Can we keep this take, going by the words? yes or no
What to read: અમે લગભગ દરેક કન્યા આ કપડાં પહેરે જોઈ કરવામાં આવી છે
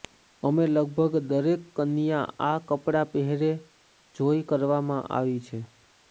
yes